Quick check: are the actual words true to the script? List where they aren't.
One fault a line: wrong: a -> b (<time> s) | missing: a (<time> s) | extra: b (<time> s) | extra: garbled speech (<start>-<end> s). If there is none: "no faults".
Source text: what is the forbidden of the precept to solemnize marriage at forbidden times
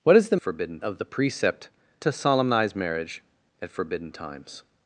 no faults